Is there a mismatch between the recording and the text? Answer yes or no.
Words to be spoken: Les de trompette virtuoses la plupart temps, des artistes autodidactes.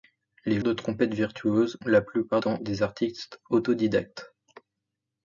no